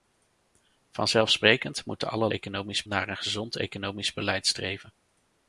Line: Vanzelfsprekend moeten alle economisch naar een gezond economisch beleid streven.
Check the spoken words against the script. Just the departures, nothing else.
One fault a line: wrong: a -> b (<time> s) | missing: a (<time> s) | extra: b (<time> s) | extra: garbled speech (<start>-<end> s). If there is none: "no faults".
no faults